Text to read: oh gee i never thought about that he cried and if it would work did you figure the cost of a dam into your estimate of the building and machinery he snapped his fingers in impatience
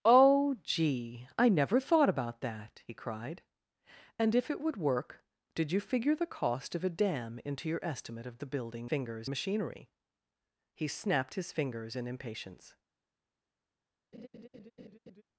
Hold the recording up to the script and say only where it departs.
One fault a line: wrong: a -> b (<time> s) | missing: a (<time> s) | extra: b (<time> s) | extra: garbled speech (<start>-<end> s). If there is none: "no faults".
wrong: and -> fingers (8.9 s)